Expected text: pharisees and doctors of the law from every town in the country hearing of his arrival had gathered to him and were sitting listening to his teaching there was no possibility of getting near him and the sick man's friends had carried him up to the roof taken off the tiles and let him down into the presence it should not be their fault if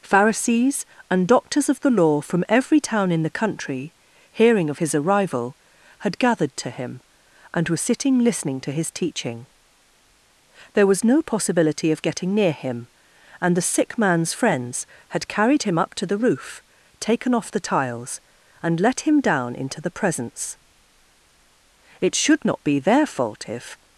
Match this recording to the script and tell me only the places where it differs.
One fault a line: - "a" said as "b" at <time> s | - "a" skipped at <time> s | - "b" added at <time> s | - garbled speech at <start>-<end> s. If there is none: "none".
none